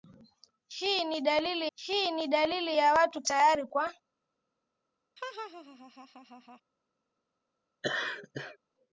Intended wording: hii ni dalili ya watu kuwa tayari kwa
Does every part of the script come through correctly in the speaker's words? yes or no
no